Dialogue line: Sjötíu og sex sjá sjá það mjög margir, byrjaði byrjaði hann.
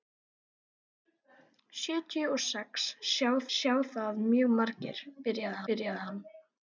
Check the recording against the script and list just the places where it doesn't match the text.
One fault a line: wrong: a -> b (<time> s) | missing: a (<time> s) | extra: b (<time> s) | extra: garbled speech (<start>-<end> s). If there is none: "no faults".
no faults